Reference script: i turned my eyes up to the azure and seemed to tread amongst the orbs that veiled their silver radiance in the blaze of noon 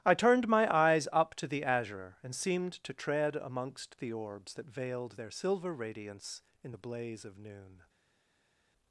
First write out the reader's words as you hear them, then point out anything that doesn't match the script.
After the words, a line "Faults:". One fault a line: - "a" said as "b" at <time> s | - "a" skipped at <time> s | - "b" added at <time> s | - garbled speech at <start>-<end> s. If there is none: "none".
i turned my eyes up to the azure and seemed to tread amongst the orbs that veiled their silver radiance in the blaze of noon
Faults:
none